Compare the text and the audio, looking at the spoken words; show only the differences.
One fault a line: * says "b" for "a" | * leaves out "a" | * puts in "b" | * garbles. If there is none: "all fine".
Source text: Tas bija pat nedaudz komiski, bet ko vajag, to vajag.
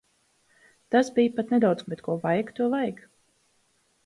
* leaves out "komiski"